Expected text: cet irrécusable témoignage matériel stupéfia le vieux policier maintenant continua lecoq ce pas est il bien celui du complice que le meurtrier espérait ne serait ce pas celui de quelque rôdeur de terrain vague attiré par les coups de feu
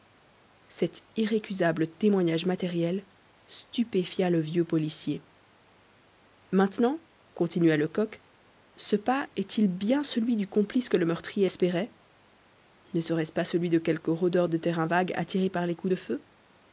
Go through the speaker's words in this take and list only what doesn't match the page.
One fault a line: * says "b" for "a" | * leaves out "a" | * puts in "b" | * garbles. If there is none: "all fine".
all fine